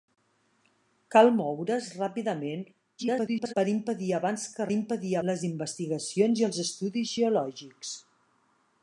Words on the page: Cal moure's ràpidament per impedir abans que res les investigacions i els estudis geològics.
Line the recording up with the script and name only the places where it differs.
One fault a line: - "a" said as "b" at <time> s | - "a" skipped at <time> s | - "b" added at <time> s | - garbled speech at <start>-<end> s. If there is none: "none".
- garbled speech at 3.0-3.5 s
- "res" said as "impedir" at 4.8 s